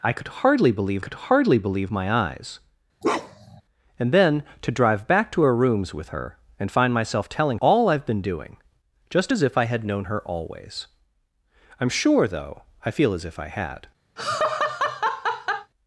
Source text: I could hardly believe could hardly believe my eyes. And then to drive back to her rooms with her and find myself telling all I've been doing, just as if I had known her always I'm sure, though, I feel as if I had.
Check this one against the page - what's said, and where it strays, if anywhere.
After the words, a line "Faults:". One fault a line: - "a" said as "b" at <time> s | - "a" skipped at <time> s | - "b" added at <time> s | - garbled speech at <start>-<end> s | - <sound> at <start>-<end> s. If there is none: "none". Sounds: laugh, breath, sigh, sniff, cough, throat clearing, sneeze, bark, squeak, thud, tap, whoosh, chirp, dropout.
I could hardly believe could hardly believe my eyes. And then to drive back to her rooms with her and find myself telling all I've been doing, just as if I had known her always I'm sure, though, I feel as if I had.
Faults:
- bark at 3.0-3.6 s
- laugh at 14.2-15.7 s